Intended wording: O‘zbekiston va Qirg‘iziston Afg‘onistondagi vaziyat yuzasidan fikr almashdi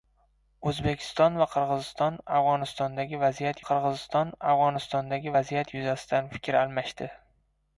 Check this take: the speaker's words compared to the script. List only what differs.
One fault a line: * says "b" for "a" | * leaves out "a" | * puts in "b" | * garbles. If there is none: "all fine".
* puts in "Qirg‘iziston Afg‘onistondagi vaziyat"